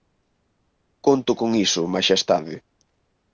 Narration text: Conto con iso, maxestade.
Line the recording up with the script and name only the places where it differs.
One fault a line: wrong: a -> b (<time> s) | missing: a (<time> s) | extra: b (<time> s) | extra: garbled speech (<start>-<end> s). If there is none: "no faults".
no faults